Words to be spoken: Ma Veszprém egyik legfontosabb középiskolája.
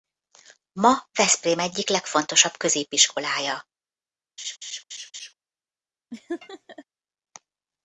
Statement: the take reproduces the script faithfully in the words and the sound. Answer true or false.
false